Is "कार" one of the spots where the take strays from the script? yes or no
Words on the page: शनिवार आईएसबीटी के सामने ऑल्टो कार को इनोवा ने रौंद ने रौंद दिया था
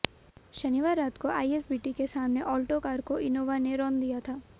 no